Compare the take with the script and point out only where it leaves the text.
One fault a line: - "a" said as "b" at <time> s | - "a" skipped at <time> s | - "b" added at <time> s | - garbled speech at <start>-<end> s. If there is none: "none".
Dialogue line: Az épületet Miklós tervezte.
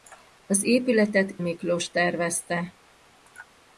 none